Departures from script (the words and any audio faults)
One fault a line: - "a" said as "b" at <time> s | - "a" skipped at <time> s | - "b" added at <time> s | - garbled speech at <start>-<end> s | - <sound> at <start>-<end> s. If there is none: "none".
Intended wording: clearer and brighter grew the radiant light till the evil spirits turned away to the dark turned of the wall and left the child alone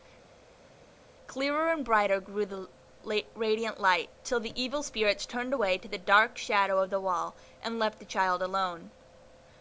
- "turned" said as "shadow" at 6.4 s